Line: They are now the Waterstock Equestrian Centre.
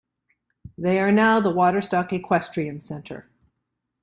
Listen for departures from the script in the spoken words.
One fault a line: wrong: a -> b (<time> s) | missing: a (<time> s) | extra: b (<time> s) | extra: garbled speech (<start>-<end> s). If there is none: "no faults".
no faults